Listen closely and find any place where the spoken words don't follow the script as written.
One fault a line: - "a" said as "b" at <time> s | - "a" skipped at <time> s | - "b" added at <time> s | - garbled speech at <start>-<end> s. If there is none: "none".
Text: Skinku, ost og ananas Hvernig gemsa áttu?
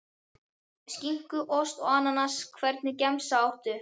none